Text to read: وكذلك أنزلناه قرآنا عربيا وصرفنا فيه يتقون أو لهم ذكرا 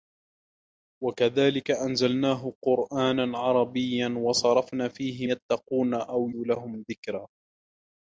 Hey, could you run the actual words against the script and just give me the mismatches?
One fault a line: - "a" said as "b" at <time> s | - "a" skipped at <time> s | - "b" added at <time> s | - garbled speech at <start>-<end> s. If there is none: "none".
none